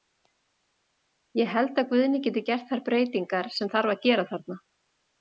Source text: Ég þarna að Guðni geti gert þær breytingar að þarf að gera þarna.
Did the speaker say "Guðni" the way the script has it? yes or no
yes